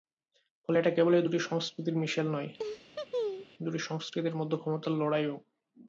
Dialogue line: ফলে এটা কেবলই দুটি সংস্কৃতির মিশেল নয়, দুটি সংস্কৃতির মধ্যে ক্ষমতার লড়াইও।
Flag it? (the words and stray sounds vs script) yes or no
yes